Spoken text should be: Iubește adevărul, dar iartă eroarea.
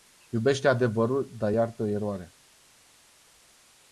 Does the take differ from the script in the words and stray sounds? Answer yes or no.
no